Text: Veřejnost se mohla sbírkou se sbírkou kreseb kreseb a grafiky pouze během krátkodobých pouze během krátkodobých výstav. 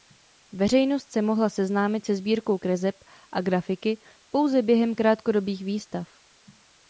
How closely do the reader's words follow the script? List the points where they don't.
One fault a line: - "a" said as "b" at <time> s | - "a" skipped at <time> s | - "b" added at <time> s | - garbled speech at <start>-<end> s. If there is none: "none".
- "sbírkou" said as "seznámit" at 1.5 s
- "kreseb" skipped at 3.0 s
- "pouze během krátkodobých" skipped at 5.6 s